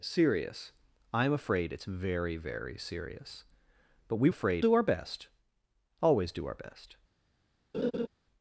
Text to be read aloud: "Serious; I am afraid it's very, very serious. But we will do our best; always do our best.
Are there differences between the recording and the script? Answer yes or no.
yes